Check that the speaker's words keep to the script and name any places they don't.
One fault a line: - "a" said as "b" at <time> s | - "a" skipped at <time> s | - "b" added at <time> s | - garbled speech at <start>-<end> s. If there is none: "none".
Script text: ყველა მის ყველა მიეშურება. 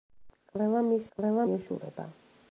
none